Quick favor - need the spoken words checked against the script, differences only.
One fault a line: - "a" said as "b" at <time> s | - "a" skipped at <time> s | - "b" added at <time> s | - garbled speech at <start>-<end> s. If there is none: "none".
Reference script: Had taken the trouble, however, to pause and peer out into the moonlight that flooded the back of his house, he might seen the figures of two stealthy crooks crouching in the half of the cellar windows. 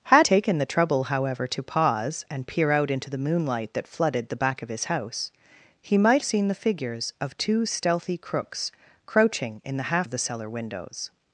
none